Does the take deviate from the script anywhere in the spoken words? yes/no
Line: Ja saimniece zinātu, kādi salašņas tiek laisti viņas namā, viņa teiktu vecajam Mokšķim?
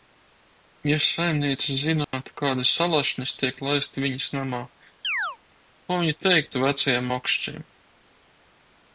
yes